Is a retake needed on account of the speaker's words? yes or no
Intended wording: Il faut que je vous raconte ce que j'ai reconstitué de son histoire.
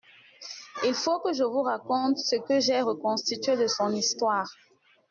no